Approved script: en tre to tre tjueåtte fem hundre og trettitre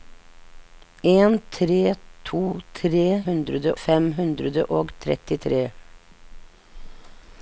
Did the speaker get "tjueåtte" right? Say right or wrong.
wrong